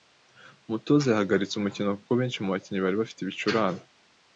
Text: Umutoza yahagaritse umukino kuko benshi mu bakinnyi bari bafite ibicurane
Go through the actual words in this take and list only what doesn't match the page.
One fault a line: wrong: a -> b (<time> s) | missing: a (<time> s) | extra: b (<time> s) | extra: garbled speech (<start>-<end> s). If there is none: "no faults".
no faults